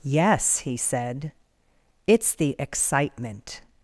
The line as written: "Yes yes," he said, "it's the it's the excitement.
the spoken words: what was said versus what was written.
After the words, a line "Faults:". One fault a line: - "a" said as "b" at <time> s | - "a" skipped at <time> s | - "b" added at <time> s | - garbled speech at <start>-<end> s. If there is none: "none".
"Yes," he said, "it's the excitement.
Faults:
- "yes" skipped at 0.6 s
- "it's the" skipped at 2.6 s